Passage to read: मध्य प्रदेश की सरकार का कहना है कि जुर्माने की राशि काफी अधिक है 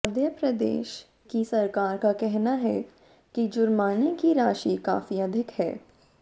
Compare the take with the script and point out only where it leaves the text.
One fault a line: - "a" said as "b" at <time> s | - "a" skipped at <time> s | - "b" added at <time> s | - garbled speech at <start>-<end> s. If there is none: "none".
none